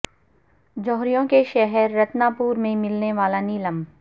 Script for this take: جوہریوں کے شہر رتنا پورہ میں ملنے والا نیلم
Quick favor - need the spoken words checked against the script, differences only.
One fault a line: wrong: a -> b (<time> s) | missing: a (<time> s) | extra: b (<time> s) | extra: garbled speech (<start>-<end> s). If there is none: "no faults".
no faults